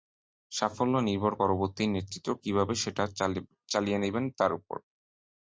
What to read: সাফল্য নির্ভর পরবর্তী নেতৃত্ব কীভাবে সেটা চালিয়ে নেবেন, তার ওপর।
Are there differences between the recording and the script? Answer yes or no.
no